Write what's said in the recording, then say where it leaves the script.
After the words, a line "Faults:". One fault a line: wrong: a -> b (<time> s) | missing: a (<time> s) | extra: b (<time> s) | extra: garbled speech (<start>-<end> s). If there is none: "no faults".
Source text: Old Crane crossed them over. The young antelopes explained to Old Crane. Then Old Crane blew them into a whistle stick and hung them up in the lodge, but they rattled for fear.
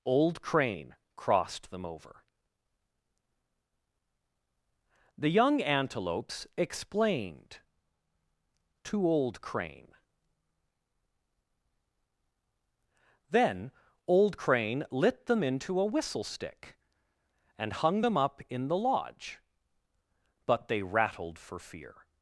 Old Crane crossed them over. The young antelopes explained to Old Crane. Then Old Crane lit them into a whistle stick and hung them up in the lodge, but they rattled for fear.
Faults:
wrong: blew -> lit (14.9 s)